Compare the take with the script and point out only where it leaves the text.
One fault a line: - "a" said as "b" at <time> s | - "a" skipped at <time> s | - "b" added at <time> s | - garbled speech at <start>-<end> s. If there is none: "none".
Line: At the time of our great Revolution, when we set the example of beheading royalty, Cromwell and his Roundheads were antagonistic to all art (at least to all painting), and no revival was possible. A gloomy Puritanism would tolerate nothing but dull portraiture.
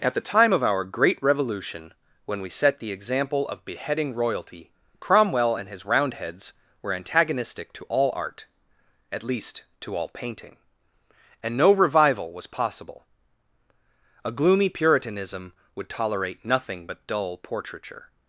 none